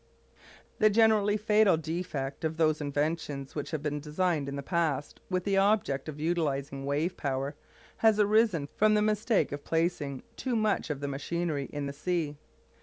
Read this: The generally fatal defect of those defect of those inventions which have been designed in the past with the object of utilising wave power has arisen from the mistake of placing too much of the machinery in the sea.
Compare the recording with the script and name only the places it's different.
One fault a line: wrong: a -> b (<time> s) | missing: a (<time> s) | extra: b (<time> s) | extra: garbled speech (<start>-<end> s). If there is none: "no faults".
missing: defect of those (2.8 s)